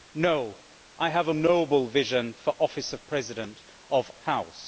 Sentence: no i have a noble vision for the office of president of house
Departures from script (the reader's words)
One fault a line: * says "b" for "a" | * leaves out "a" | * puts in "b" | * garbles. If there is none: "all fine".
all fine